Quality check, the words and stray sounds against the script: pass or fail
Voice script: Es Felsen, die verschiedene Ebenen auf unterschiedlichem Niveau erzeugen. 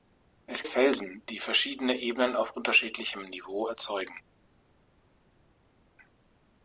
pass